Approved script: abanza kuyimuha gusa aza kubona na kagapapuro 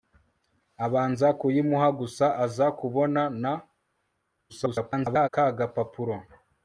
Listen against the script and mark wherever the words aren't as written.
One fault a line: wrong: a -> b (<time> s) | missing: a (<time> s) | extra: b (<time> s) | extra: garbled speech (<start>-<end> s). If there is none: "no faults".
extra: garbled speech (4.5-5.3 s)